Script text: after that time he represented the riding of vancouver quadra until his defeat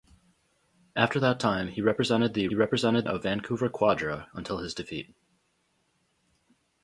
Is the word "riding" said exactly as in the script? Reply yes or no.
no